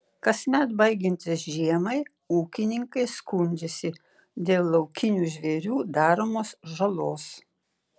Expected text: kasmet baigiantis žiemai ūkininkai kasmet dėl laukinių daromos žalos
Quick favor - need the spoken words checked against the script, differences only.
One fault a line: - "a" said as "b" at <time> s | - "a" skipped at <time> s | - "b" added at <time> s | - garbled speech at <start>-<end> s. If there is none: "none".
- "kasmet" said as "skundžiasi" at 3.2 s
- "žvėrių" added at 5.4 s